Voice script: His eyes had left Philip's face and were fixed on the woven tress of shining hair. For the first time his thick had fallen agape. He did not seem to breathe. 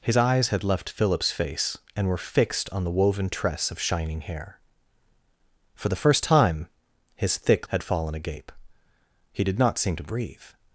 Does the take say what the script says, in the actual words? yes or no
yes